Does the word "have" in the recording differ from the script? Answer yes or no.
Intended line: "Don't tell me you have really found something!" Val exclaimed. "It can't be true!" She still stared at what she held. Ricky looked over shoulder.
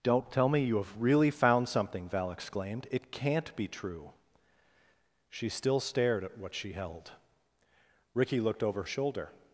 no